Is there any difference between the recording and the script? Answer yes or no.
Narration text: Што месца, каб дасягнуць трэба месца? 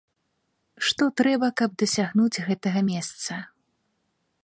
yes